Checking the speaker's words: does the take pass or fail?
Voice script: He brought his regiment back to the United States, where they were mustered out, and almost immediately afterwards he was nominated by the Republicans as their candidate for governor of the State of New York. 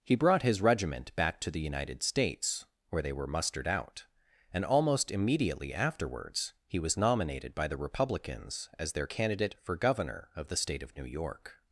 pass